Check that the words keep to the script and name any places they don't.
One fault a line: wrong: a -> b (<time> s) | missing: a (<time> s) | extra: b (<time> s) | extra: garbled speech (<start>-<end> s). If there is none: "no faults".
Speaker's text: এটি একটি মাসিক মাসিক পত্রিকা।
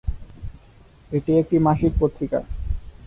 missing: মাসিক (1.9 s)